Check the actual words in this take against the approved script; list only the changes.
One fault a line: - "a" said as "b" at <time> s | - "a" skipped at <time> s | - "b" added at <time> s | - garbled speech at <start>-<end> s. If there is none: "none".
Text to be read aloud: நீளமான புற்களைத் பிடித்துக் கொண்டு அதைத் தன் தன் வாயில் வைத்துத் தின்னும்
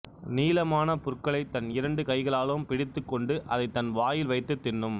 - "தன் இரண்டு கைகளாலும்" added at 1.5 s
- "தன்" skipped at 3.9 s